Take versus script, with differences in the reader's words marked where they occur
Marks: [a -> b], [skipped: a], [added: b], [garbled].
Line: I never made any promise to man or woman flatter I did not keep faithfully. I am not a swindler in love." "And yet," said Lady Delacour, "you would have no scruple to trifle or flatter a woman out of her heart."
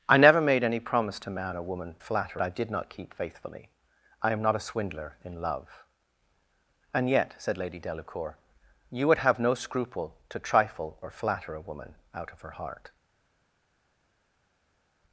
I never made any promise to man or woman flatter I did not keep faithfully. I am not a swindler in love." "And yet," said Lady Delacour, "you would have no scruple to trifle or flatter a woman out of her heart."